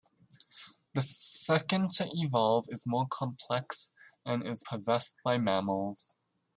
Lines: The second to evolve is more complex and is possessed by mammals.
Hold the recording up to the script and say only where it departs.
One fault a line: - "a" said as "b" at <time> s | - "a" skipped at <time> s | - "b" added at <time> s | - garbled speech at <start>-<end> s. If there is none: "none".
none